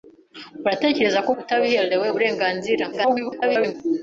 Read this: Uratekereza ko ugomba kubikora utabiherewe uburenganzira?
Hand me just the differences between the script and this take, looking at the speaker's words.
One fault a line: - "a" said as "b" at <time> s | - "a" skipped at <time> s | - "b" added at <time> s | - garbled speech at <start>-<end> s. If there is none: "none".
- "ugomba kubikora" skipped at 1.3 s
- garbled speech at 2.9-3.7 s